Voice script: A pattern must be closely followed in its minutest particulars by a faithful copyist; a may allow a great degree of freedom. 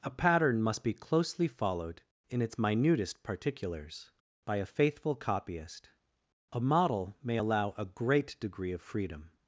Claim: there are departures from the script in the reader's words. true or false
true